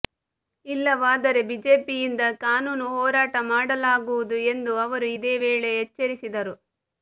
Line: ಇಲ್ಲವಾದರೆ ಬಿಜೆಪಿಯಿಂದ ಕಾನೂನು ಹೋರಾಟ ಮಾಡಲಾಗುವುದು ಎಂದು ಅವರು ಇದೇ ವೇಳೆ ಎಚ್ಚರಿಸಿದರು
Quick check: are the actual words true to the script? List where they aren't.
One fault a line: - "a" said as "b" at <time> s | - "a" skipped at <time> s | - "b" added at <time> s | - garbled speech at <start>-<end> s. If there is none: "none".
none